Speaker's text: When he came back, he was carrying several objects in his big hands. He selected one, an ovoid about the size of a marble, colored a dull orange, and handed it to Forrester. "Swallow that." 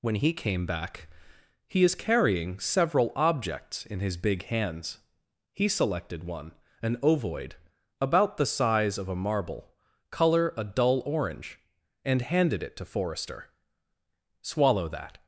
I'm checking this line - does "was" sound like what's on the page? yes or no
no